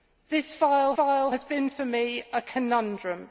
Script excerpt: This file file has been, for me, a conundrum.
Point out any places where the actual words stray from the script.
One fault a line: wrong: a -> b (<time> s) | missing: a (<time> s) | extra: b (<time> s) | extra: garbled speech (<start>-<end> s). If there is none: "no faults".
no faults